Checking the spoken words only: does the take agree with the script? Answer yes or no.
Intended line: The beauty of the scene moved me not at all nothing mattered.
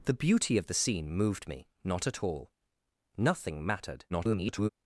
no